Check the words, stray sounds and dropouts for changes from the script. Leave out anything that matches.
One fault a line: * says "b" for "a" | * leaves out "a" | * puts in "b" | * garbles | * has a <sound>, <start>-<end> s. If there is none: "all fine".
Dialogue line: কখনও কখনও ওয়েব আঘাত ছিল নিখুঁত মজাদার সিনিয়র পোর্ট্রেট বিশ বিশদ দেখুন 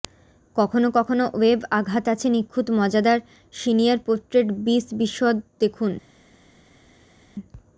* says "আছে" for "ছিল"